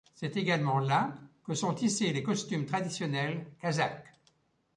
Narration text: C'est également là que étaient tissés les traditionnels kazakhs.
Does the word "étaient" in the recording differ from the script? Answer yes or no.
yes